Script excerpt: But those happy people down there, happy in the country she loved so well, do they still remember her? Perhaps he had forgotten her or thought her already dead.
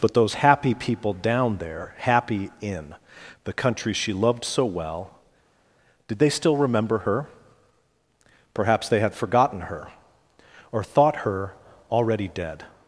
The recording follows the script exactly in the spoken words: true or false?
false